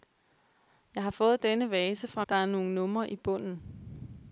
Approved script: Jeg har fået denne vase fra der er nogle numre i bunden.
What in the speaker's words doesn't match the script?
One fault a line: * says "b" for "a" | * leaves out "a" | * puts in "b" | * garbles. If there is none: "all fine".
all fine